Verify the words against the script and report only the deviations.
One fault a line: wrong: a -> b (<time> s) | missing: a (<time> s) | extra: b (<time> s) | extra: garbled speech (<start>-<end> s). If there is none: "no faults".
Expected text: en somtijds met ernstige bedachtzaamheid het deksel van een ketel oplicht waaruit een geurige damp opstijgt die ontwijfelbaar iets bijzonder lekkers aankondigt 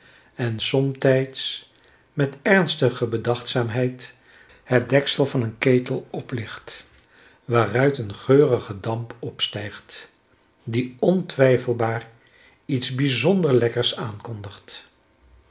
no faults